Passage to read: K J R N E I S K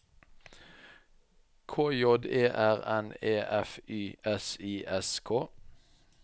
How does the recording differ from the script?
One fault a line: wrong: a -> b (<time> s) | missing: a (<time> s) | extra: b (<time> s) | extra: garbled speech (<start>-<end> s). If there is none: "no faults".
extra: E (2.2 s)
extra: F Y S (3.4 s)